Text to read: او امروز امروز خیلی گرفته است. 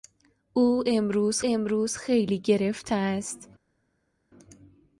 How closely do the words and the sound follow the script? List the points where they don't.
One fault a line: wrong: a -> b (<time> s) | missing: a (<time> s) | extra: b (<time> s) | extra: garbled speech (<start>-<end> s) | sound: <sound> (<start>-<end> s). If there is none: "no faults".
no faults